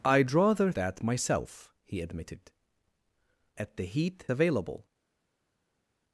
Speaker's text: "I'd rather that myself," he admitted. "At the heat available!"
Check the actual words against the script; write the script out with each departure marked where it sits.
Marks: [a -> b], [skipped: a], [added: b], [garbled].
"I'd rather that myself," he admitted. "At the heat available!"